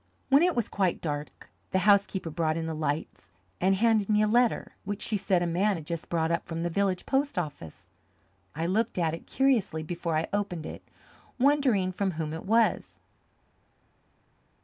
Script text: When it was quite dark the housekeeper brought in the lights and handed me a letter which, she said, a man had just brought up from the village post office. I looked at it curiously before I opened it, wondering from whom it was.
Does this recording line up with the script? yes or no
yes